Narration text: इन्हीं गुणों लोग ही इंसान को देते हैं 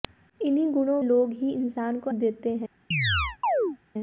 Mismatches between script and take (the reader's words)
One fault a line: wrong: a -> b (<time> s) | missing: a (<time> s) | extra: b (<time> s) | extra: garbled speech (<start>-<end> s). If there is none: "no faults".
no faults